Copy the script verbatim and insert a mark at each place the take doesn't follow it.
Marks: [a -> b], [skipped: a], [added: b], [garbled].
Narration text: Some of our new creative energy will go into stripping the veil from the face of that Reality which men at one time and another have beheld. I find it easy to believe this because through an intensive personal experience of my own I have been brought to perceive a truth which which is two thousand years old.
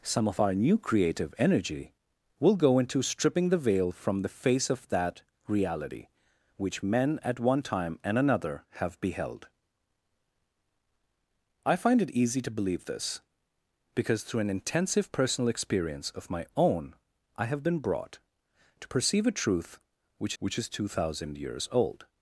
Some of our new creative energy will go into stripping the veil from the face of that Reality which men at one time and another have beheld. I find it easy to believe this because through an intensive personal experience of my own I have been brought to perceive a truth which which is two thousand years old.